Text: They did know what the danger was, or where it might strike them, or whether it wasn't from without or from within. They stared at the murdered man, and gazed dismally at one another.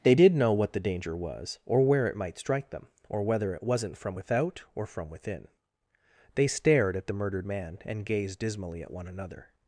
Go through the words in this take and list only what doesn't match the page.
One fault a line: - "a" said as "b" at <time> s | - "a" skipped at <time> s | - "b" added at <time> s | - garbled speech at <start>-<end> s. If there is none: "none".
none